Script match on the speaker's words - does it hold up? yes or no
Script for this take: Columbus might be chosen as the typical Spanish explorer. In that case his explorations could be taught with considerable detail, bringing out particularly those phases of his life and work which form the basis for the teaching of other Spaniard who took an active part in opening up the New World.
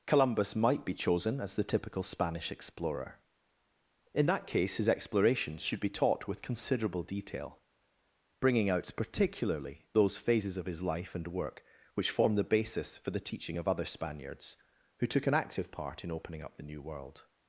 no